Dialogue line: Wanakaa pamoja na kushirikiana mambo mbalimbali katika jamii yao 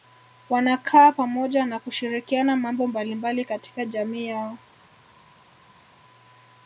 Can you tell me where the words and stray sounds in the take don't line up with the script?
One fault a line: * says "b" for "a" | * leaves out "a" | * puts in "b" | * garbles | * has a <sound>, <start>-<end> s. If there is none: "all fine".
all fine